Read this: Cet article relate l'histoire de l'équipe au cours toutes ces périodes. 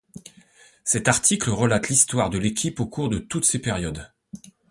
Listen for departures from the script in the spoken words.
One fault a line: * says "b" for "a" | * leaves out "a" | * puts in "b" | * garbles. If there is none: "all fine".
* puts in "de"